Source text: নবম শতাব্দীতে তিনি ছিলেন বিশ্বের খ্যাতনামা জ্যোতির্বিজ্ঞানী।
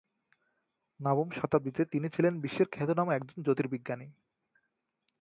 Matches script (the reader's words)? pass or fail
fail